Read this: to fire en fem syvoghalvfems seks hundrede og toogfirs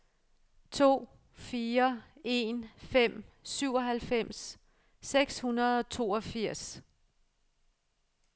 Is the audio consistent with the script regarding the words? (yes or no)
yes